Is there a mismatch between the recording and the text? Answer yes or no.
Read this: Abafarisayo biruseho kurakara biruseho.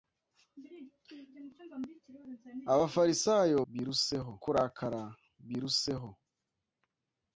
no